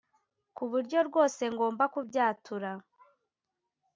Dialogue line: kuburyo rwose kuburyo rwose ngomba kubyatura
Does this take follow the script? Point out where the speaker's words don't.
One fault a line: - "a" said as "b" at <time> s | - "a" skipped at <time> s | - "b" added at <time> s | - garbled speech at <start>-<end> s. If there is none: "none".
- "kuburyo rwose" skipped at 1.4 s